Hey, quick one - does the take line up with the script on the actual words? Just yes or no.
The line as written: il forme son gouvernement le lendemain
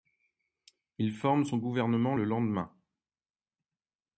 yes